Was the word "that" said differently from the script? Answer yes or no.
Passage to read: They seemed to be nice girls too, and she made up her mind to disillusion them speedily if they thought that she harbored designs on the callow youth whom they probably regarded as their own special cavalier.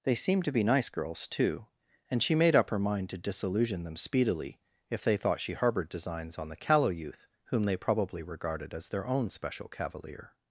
yes